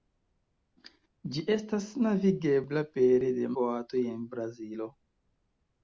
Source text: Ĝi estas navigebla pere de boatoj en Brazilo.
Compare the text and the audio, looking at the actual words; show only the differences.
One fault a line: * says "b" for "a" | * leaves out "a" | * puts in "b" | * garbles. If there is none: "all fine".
all fine